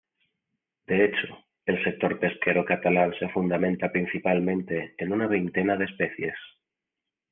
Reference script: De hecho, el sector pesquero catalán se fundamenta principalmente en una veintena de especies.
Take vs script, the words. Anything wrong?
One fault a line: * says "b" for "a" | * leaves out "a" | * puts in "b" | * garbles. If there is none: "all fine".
all fine